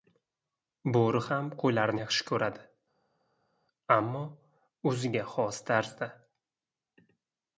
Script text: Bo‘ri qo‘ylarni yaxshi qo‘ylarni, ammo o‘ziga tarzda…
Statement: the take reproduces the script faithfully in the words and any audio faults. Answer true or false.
false